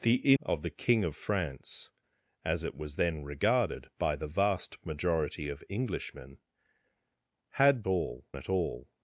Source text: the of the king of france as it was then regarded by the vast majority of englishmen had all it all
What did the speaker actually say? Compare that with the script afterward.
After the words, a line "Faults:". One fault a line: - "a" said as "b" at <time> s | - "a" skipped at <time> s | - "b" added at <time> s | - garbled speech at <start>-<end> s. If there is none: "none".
the of the king of france as it was then regarded by the vast majority of englishmen had all it all
Faults:
none